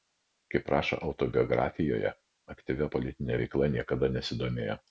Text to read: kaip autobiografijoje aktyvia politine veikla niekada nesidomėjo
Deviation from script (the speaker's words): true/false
true